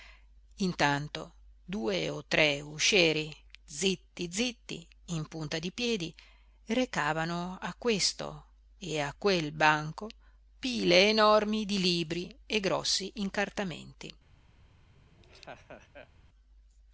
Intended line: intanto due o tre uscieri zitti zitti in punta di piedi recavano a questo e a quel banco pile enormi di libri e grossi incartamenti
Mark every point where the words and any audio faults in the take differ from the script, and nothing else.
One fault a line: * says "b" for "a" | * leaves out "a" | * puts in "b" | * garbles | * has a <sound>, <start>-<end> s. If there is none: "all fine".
* has a laugh, 14.9-16.1 s